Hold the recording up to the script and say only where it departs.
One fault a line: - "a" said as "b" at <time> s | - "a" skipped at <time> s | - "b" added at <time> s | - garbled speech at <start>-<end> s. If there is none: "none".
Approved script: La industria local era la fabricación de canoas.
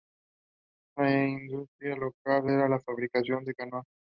none